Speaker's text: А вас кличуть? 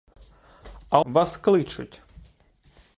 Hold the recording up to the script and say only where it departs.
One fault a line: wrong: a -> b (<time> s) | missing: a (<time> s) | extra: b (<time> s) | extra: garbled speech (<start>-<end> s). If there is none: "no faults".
no faults